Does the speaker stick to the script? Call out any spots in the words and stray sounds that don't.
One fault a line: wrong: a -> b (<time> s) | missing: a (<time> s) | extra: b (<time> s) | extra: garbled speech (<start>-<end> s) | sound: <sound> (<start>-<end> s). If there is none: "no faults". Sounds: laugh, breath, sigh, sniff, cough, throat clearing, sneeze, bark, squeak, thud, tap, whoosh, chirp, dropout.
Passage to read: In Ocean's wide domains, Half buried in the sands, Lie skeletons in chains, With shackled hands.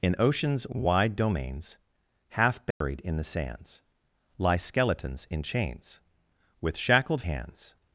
sound: dropout (2.7-2.8 s)